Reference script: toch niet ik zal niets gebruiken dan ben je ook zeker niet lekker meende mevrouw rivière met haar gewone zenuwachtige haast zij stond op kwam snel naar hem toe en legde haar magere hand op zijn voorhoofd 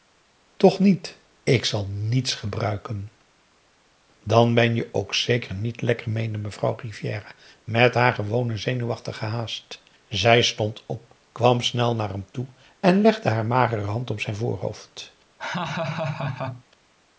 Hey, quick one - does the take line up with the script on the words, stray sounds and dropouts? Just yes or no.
no